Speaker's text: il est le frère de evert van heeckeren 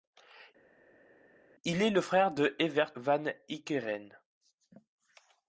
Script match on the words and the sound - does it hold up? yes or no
yes